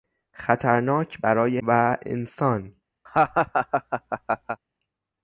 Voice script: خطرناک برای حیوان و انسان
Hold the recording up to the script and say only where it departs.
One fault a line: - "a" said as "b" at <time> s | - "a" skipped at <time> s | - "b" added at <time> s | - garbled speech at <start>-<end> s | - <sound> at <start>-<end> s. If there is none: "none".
- "حیوان" skipped at 1.6 s
- laugh at 3.1-4.6 s